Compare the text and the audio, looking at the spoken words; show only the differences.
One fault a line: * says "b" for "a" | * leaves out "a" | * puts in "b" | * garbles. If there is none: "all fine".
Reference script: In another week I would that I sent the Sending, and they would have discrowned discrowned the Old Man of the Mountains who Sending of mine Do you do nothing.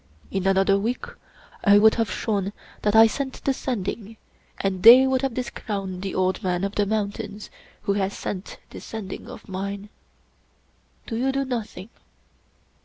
* puts in "have shown"
* leaves out "discrowned"
* puts in "has sent this"